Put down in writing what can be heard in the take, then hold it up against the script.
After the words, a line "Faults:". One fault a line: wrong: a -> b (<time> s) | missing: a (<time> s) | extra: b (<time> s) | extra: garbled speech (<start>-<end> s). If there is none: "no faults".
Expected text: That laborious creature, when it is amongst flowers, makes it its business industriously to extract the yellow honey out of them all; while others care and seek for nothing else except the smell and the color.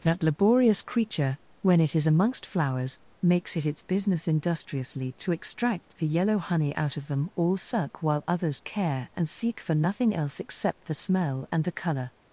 That laborious creature, when it is amongst flowers, makes it its business industriously to extract the yellow honey out of them all; suck while others care and seek for nothing else except the smell and the color.
Faults:
extra: suck (7.5 s)